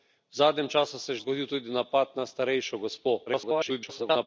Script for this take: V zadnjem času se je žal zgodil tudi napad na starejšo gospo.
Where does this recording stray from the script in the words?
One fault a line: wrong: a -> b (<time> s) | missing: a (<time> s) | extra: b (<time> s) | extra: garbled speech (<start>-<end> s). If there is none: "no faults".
missing: žal (1.1 s)
extra: garbled speech (3.3-4.3 s)